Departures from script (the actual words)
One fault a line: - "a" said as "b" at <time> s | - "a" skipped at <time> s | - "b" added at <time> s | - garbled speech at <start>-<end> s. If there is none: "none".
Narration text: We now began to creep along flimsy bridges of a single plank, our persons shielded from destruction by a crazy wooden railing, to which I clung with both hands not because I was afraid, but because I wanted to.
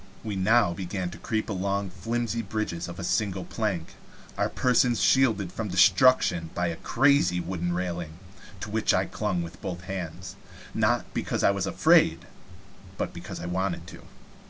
none